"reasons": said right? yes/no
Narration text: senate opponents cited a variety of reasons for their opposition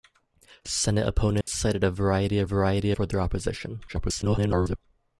no